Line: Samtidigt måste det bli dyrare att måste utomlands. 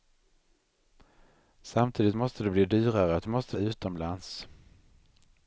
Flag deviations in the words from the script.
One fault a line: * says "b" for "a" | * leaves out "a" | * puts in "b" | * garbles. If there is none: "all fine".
all fine